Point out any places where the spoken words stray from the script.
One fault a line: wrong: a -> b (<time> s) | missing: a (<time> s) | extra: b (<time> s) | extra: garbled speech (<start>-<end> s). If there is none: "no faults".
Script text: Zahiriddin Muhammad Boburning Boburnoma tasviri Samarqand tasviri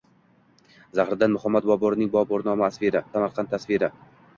no faults